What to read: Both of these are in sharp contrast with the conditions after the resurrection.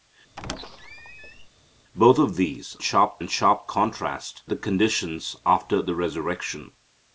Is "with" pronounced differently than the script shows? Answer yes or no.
yes